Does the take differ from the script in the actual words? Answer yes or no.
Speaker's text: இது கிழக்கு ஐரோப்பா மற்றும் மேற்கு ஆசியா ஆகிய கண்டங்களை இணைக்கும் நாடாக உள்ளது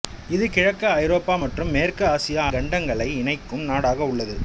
yes